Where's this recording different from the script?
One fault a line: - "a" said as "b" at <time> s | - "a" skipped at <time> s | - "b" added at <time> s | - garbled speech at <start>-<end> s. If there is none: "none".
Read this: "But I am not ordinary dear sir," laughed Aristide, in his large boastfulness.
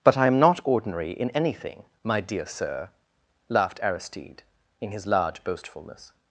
- "in anything my" added at 1.1 s